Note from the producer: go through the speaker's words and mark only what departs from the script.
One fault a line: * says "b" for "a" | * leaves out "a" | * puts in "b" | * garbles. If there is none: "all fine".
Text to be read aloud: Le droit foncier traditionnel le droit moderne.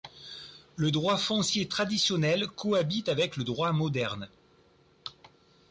* puts in "cohabite avec"